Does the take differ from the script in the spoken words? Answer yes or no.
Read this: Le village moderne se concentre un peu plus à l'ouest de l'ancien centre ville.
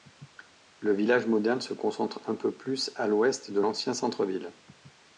no